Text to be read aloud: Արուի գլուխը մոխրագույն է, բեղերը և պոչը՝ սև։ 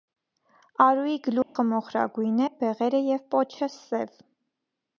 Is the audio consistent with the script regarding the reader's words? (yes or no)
yes